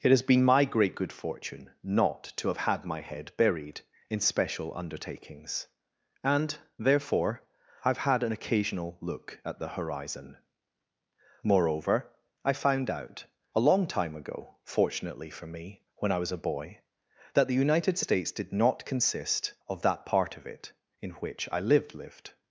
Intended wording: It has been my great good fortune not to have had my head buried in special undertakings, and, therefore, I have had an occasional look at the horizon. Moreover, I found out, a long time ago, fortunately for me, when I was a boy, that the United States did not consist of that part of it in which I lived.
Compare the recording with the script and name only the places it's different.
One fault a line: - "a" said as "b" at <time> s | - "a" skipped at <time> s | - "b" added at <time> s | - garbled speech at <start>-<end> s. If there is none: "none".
- "lived" added at 21.9 s